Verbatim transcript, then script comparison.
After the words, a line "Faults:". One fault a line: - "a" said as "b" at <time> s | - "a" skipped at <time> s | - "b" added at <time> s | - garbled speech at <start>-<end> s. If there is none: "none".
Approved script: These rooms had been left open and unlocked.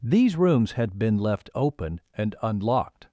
These rooms had been left open and unlocked.
Faults:
none